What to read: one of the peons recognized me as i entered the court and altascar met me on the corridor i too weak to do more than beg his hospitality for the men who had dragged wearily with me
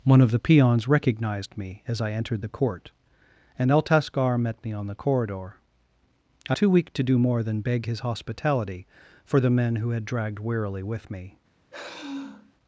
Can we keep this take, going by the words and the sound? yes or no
no